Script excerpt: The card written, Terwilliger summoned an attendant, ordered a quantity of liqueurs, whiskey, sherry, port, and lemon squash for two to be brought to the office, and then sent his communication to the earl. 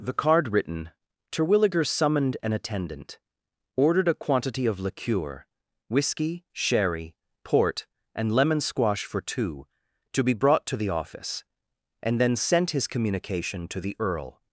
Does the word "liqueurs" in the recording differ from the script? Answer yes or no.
yes